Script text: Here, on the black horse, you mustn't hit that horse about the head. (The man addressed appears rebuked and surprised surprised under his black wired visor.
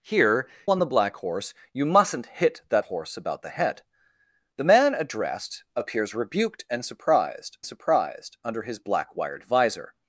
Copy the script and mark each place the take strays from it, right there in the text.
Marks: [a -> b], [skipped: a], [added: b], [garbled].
Here, on the black horse, you mustn't hit that horse about the head. (The man addressed appears rebuked and surprised surprised under his black wired visor.